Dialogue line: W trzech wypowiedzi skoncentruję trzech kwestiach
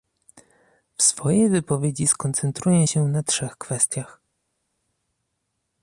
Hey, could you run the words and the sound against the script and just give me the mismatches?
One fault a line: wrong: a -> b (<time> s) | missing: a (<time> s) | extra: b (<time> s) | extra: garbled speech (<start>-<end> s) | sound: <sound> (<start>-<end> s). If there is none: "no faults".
wrong: trzech -> swojej (1.0 s)
extra: się na (2.8 s)